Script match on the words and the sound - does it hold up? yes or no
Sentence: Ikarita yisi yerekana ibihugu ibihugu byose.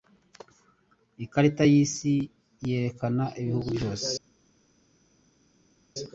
no